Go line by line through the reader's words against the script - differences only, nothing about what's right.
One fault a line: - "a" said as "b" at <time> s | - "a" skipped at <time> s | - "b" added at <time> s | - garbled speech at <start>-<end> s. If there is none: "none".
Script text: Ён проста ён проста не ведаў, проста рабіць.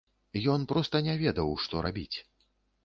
- "ён проста" skipped at 1.0 s
- "проста" said as "што" at 1.7 s